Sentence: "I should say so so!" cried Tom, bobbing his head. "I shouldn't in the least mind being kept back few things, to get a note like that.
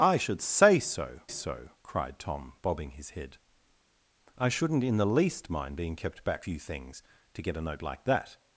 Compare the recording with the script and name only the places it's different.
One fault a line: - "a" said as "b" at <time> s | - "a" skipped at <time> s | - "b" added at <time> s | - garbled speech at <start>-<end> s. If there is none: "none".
none